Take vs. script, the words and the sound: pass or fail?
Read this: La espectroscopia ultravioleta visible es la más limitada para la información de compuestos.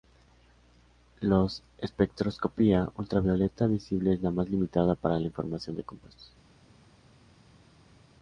pass